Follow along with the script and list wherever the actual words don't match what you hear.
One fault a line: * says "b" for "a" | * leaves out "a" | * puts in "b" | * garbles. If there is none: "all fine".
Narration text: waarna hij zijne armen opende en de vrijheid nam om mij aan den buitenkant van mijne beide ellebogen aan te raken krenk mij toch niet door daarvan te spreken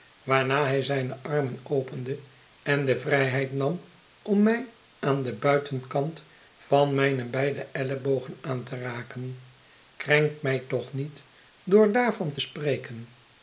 all fine